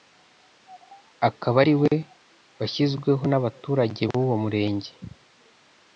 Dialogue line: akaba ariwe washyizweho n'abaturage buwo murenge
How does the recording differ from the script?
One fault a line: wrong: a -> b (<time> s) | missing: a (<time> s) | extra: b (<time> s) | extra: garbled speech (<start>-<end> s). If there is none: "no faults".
no faults